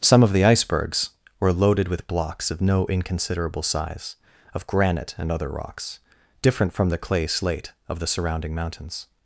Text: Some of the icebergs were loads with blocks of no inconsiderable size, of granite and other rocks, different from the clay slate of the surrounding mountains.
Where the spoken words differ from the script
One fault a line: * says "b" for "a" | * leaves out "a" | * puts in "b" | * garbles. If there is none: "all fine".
* says "loaded" for "loads"